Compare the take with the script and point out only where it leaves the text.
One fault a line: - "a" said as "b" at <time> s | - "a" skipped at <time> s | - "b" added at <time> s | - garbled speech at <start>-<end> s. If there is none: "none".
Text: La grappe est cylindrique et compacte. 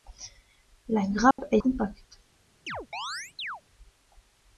- "cylindrique et" skipped at 1.6 s